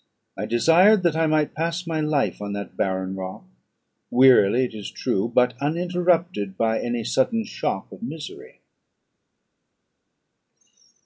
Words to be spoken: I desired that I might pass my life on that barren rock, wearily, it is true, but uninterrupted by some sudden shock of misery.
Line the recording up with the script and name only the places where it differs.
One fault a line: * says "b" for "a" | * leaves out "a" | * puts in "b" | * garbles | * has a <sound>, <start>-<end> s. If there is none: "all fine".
* says "any" for "some"